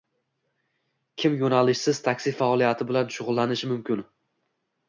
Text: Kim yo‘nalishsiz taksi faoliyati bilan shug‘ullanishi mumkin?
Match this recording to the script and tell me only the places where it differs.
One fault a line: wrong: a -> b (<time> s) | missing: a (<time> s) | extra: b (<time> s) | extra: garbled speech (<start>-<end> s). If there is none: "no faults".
no faults